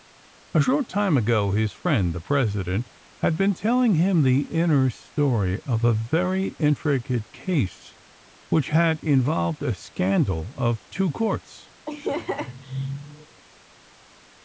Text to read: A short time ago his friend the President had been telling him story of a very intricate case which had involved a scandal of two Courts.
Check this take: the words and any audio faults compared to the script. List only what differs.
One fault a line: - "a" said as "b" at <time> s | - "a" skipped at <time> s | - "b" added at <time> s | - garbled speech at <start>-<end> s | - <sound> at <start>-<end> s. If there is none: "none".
- "the inner" added at 4.2 s
- laugh at 11.9-13.4 s